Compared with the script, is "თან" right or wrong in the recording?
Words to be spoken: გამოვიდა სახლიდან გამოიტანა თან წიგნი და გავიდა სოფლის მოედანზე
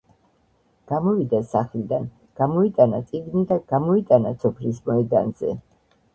wrong